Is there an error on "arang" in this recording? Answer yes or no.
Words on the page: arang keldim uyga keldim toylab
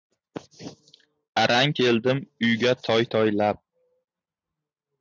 no